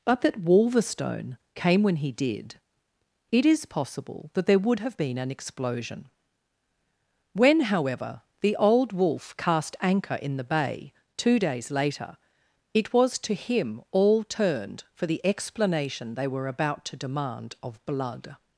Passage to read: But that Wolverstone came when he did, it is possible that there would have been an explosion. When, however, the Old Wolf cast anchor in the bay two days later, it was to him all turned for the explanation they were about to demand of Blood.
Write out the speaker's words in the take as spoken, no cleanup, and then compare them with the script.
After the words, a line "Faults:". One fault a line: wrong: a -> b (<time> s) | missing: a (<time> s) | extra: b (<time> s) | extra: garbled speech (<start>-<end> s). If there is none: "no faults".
But that Wolverstone came when he did, it is possible that there would have been an explosion. When, however, the Old Wolf cast anchor in the bay two days later, it was to him all turned for the explanation they were about to demand of Blood.
Faults:
no faults